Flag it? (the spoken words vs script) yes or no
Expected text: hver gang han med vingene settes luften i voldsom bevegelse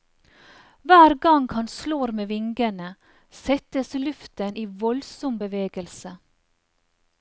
yes